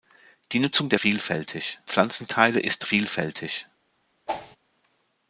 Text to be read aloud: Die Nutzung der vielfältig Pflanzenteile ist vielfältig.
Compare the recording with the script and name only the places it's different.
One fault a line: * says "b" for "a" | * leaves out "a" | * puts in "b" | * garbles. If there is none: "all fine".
all fine